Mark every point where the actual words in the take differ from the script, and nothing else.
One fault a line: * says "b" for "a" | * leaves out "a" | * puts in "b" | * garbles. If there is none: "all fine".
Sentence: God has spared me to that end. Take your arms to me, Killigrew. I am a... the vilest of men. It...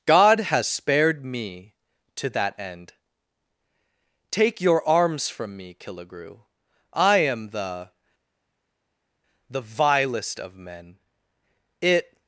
* says "from" for "to"
* says "the" for "a"